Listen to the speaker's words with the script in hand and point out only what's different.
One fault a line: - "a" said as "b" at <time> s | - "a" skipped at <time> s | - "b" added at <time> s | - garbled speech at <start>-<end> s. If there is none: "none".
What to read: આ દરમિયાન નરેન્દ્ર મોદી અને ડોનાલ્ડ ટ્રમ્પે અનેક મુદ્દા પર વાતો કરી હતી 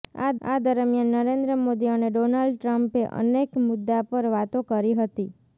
- "આ" added at 0.5 s